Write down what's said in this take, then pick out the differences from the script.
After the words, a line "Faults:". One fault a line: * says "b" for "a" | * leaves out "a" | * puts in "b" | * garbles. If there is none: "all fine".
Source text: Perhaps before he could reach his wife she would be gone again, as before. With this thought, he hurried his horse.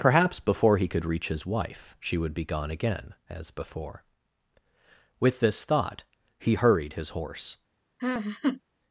Perhaps before he could reach his wife she would be gone again, as before. With this thought, he hurried his horse.
Faults:
all fine